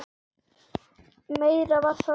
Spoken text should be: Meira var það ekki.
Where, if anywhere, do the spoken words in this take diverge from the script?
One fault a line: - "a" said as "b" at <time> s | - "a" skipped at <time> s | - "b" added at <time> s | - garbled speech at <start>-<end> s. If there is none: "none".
none